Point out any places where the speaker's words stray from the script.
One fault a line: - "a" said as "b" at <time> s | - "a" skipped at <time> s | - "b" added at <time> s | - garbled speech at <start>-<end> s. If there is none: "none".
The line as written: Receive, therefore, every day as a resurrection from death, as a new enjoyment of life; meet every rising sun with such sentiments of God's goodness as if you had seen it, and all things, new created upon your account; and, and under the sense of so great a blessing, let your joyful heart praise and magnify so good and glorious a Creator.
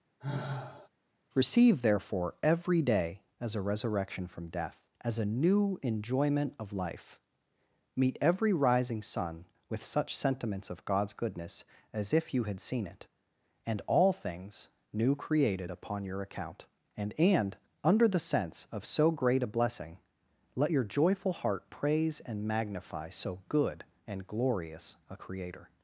none